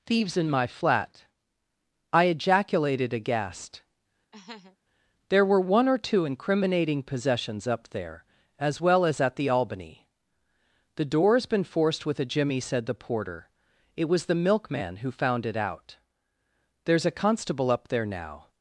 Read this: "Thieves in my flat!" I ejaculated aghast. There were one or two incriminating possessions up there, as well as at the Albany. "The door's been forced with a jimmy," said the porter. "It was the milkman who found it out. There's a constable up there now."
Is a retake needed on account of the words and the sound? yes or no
yes